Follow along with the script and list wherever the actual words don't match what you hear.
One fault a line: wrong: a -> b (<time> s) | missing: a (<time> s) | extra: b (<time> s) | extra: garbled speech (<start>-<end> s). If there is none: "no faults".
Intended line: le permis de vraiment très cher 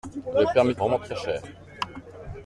no faults